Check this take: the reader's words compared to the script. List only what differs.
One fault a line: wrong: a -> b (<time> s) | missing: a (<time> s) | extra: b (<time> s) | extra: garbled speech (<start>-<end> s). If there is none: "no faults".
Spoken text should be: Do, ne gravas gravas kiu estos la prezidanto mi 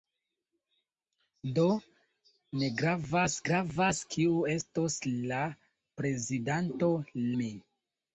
no faults